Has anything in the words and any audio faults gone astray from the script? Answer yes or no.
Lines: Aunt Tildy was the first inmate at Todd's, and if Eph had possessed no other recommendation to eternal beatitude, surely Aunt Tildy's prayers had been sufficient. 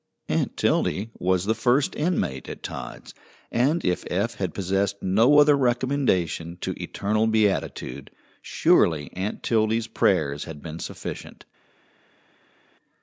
no